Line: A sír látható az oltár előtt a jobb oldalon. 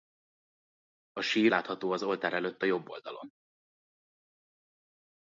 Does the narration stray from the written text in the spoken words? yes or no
no